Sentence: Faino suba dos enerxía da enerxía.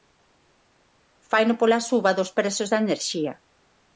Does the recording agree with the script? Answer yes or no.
no